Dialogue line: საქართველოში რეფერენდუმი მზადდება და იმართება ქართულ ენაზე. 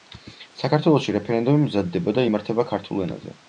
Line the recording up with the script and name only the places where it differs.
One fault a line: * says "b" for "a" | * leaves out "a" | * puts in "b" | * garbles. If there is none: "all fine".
all fine